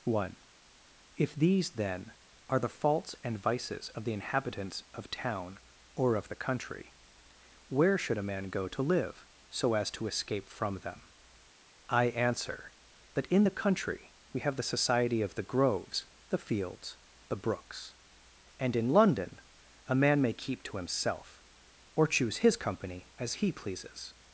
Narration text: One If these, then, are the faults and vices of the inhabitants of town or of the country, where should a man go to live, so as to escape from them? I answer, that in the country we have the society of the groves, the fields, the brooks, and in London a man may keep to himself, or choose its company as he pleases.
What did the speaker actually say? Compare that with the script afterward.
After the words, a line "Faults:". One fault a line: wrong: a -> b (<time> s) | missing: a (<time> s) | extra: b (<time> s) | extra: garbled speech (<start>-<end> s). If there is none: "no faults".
One If these, then, are the faults and vices of the inhabitants of town or of the country, where should a man go to live, so as to escape from them? I answer, that in the country we have the society of the groves, the fields, the brooks, and in London a man may keep to himself, or choose his company as he pleases.
Faults:
wrong: its -> his (22.4 s)